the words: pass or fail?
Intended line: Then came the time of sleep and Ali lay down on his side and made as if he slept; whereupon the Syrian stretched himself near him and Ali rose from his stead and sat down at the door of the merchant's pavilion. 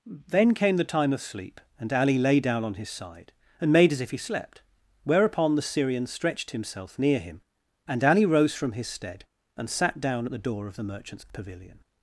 pass